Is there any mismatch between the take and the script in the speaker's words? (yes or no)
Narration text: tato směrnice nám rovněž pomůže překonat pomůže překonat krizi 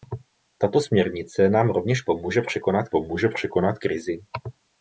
no